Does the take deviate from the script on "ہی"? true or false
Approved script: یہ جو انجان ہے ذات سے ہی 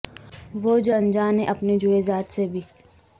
true